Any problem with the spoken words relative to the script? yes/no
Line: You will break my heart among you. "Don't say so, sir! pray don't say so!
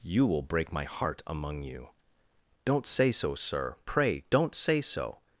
no